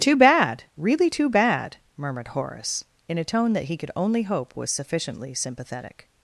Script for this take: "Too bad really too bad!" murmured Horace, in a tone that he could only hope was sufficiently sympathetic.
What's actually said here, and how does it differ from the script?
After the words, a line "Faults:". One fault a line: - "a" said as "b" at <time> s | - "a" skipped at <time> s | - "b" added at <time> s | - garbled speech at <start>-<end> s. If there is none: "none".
"Too bad really too bad!" murmured Horace, in a tone that he could only hope was sufficiently sympathetic.
Faults:
none